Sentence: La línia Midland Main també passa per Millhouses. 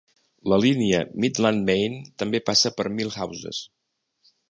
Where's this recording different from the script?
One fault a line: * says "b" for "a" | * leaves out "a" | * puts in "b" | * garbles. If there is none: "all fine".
all fine